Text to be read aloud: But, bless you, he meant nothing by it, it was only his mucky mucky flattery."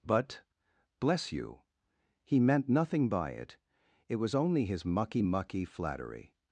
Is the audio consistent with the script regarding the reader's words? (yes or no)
yes